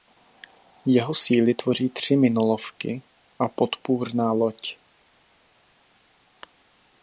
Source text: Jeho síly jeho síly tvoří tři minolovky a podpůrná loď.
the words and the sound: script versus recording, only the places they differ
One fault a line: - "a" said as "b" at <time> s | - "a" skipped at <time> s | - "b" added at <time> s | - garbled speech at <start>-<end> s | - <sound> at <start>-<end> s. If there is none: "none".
- "jeho síly" skipped at 1.5 s